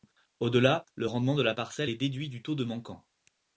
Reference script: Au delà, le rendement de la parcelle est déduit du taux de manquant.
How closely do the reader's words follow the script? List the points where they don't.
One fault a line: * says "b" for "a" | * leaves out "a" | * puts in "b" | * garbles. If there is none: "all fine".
all fine